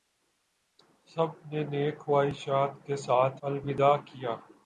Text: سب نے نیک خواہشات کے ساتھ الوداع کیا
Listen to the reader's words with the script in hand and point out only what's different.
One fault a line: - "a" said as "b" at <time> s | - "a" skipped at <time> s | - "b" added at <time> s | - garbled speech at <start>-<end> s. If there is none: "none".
none